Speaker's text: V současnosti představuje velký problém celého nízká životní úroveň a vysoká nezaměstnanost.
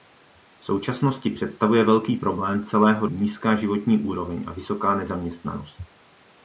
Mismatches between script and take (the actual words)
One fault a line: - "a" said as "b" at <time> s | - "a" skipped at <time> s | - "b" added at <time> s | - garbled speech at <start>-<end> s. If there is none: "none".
none